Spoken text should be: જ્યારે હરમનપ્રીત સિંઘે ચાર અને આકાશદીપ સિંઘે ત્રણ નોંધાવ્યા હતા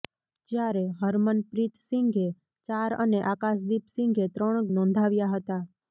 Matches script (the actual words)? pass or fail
pass